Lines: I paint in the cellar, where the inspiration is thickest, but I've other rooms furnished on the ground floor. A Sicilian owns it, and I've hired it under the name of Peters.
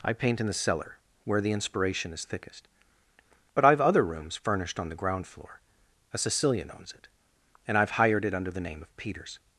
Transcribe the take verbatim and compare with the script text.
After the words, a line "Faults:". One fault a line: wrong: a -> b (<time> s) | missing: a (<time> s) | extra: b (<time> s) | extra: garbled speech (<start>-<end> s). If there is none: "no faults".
I paint in the cellar, where the inspiration is thickest, but I've other rooms furnished on the ground floor. A Sicilian owns it, and I've hired it under the name of Peters.
Faults:
no faults